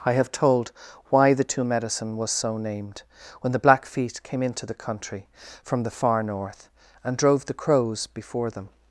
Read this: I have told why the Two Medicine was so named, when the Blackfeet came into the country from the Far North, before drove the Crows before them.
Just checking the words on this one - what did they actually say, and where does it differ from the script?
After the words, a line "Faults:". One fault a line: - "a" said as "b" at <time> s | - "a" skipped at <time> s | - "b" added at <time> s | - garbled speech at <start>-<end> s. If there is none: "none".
I have told why the Two Medicine was so named, when the Blackfeet came into the country from the Far North, and drove the Crows before them.
Faults:
- "before" said as "and" at 7.0 s